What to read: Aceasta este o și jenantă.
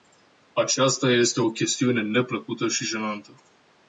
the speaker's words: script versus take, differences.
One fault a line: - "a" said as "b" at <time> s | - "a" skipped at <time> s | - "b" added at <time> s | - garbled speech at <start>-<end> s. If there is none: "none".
- "chestiune neplăcută" added at 1.5 s